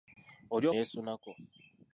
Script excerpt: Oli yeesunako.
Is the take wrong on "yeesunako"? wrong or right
right